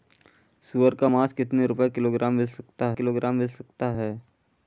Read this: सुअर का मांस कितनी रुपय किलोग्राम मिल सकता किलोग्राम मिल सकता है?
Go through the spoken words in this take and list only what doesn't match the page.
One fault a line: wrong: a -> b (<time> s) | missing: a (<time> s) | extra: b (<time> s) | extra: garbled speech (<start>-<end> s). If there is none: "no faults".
no faults